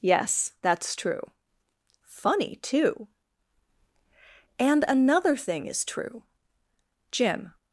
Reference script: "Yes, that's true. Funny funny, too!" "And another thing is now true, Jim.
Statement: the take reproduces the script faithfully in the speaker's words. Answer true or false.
false